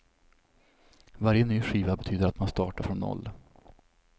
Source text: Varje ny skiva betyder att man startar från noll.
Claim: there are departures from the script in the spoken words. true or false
false